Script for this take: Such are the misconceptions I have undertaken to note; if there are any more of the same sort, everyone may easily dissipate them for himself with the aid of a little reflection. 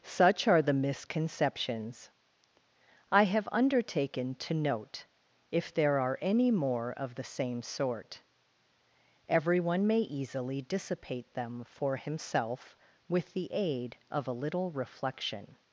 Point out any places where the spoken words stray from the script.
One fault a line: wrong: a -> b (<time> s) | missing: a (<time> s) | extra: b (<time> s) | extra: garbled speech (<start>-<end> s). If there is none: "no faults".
no faults